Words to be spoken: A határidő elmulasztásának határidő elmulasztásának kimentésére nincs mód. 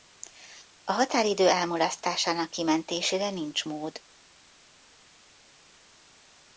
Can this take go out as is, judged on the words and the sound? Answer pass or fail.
fail